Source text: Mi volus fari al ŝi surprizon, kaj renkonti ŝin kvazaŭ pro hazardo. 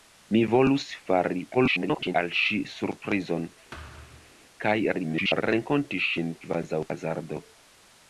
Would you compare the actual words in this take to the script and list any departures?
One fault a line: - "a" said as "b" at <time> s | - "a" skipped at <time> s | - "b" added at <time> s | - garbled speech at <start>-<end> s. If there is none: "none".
- garbled speech at 1.5-2.2 s
- garbled speech at 4.9-5.4 s
- "pro" skipped at 6.9 s